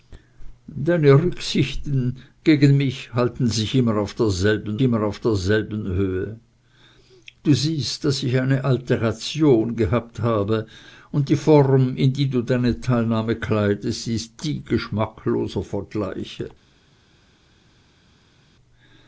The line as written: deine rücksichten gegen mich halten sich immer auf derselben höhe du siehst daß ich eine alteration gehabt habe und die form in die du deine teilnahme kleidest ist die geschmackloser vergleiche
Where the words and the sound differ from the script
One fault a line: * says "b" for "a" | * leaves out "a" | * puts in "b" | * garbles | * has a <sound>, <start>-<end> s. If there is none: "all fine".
* puts in "immer auf derselben"